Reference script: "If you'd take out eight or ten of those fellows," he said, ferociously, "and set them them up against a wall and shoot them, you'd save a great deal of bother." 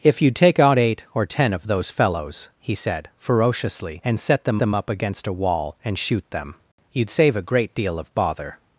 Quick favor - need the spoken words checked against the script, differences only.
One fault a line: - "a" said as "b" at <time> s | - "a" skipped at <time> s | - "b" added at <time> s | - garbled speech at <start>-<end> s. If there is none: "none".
none